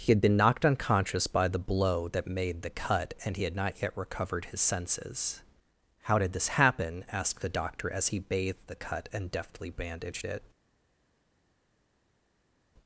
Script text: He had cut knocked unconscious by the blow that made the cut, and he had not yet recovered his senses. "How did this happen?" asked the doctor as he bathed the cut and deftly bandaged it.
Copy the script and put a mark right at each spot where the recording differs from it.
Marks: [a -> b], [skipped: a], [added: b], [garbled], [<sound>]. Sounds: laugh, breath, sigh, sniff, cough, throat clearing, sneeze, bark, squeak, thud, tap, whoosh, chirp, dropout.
He had [cut -> been] knocked unconscious by the blow that made the cut, and he had not yet recovered his senses. "How did this happen?" asked the doctor as he bathed the cut and deftly bandaged it.